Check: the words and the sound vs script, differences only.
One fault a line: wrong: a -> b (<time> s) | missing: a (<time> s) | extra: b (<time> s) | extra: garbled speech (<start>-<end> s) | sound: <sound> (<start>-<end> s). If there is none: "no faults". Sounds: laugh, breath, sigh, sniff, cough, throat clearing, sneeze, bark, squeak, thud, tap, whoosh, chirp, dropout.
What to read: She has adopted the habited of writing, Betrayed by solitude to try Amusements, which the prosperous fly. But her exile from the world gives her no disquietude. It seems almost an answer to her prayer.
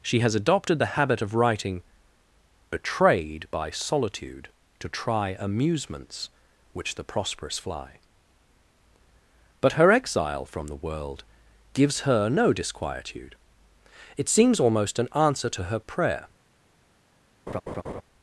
wrong: habited -> habit (1.0 s)
sound: laugh (17.5-18.0 s)